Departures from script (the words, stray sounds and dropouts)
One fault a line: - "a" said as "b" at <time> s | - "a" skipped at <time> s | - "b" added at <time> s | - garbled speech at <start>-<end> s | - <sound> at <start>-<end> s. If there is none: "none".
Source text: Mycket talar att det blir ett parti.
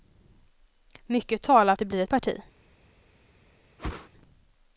- whoosh at 3.8-4.1 s